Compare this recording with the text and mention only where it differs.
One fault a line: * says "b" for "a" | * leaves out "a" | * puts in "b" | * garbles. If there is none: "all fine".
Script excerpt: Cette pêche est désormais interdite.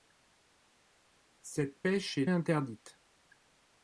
* leaves out "désormais"